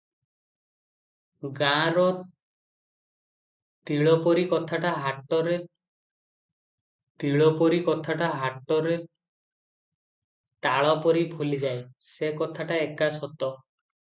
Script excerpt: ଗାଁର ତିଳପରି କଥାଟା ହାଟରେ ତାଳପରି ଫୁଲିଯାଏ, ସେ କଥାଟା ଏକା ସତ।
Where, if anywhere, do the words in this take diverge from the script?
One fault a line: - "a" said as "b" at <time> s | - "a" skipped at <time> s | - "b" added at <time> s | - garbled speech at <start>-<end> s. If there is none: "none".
- "ତିଳପରି କଥାଟା ହାଟରେ" added at 7.2 s